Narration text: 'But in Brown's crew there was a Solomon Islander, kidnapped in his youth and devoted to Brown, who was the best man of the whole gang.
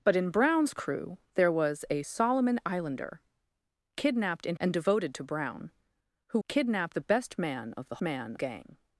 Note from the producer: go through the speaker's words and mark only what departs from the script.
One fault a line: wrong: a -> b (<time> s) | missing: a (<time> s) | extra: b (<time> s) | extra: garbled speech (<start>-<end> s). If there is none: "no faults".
missing: his youth (4.6 s)
wrong: was -> kidnapped (6.5 s)
wrong: whole -> man (8.0 s)